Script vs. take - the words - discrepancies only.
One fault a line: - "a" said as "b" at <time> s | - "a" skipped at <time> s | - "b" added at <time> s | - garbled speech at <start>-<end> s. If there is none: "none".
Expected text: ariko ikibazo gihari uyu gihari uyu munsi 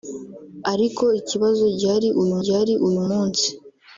none